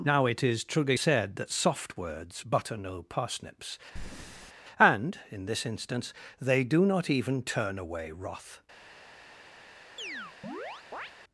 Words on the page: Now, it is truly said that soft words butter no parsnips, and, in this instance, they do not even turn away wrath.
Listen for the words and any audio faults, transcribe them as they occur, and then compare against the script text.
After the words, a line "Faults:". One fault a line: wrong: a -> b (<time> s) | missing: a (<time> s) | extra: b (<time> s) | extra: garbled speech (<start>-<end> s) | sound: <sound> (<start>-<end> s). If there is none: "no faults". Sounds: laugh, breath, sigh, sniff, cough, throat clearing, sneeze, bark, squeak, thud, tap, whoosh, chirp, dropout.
Now, it is truly said that soft words butter no parsnips, and, in this instance, they do not even turn away wrath.
Faults:
sound: breath (4.0-4.5 s)
sound: chirp (10.0-11.1 s)